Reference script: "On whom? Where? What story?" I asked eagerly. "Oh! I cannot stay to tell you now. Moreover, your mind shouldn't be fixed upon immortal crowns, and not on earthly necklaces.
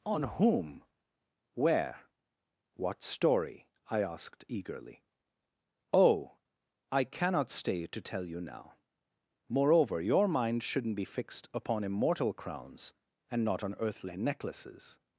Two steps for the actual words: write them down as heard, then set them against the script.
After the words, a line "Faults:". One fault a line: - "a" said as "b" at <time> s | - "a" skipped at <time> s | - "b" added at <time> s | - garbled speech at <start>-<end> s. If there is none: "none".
"On whom? Where? What story?" I asked eagerly. "Oh! I cannot stay to tell you now. Moreover, your mind shouldn't be fixed upon immortal crowns, and not on earthly necklaces.
Faults:
none